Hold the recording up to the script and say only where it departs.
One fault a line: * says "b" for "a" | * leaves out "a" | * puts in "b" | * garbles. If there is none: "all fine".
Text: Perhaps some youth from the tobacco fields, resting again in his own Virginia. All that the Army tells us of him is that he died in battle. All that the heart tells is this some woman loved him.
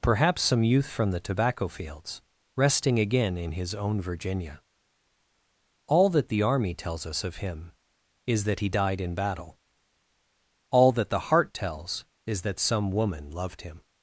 * says "that" for "this"